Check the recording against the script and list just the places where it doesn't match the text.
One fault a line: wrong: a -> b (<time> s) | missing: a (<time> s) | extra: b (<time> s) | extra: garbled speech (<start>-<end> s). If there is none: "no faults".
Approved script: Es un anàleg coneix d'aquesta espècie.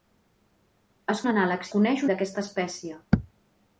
no faults